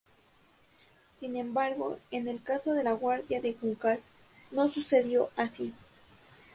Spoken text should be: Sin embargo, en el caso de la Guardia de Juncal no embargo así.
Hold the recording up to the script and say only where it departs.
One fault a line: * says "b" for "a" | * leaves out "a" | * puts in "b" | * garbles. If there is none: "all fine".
* says "sucedió" for "embargo"